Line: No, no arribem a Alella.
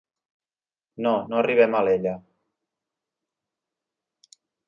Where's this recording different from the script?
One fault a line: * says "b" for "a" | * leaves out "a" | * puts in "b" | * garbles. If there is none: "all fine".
all fine